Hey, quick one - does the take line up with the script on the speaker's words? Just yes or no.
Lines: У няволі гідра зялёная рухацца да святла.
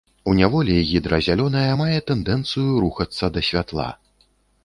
no